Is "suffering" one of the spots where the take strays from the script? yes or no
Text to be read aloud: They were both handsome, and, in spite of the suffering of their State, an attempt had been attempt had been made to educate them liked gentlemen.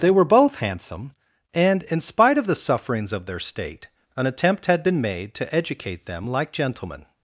yes